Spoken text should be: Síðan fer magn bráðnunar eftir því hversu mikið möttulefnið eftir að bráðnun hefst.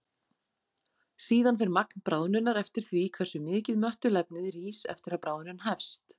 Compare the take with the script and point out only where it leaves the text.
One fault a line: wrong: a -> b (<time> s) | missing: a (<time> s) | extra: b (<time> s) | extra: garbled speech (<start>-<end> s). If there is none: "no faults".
extra: rís (4.6 s)